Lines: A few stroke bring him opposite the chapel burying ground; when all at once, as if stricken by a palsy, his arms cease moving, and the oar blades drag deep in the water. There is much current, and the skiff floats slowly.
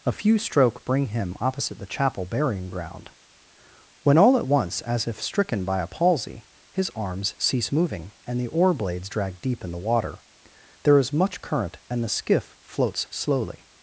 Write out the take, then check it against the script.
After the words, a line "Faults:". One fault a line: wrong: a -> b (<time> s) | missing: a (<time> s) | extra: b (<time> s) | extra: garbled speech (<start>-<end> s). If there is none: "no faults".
A few stroke bring him opposite the chapel burying ground; when all at once, as if stricken by a palsy, his arms cease moving, and the oar blades drag deep in the water. There is much current, and the skiff floats slowly.
Faults:
no faults